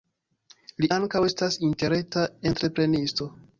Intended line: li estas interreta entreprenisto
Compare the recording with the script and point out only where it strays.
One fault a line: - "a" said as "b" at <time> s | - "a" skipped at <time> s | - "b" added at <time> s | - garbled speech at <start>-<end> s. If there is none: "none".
- "ankaŭ" added at 1.0 s